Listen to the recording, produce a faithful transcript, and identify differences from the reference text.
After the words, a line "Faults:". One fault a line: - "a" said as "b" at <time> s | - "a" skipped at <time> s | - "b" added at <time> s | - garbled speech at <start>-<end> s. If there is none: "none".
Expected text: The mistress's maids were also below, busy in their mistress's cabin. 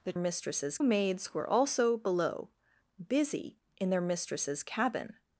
The mistress's maids were also below, busy in their mistress's cabin.
Faults:
none